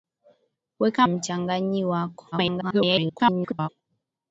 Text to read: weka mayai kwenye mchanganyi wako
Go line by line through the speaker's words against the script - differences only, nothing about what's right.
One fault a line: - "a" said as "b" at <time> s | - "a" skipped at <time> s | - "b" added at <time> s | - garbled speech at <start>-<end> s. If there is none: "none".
- "mayai kwenye" skipped at 1.1 s
- garbled speech at 2.3-3.7 s